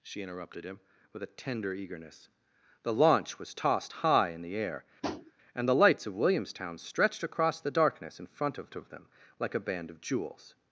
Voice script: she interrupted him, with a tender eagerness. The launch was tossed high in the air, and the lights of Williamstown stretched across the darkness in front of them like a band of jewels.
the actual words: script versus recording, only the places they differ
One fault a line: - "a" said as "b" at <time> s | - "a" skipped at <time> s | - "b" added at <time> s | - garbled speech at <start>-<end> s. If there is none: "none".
- "of" added at 8.7 s